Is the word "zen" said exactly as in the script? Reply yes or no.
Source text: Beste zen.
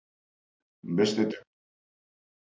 yes